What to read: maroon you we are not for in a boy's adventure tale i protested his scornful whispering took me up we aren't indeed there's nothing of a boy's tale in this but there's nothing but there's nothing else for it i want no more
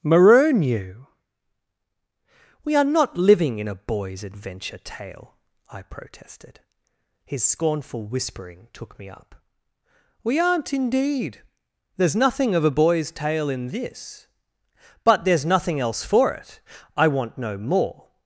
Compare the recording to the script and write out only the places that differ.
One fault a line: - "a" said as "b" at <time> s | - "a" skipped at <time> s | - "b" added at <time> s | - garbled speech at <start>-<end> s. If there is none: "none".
- "for" said as "living" at 3.2 s
- "but there's nothing" skipped at 15.8 s